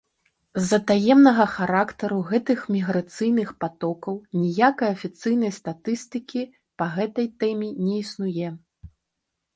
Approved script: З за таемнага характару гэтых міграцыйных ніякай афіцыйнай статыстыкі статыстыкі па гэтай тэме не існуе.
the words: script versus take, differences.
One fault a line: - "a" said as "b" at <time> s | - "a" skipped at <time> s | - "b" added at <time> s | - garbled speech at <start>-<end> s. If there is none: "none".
- "патокаў" added at 3.6 s
- "статыстыкі" skipped at 6.4 s